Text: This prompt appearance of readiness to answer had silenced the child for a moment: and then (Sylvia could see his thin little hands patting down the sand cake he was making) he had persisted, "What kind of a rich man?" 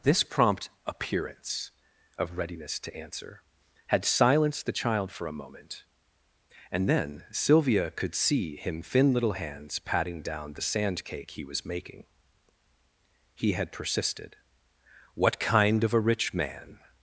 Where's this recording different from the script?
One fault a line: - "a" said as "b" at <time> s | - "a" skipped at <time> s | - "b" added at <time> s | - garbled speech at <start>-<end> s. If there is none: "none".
- "his" said as "him" at 8.6 s